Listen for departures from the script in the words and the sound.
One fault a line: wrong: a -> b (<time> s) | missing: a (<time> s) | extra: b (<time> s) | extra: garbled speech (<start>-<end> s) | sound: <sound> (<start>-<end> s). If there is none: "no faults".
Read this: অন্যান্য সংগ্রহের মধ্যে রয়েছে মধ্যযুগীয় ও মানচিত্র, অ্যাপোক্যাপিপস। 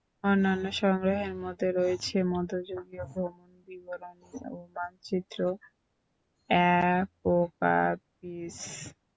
extra: ভ্রমণ বিবরণী (3.1 s)